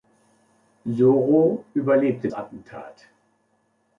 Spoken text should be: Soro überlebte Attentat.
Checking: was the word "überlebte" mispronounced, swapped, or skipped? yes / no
no